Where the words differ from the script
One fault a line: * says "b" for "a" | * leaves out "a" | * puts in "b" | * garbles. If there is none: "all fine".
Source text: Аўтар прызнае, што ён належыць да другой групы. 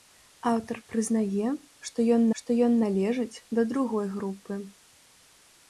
* puts in "што ён"